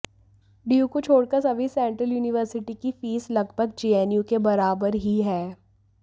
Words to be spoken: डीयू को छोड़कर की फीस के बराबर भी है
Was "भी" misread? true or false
true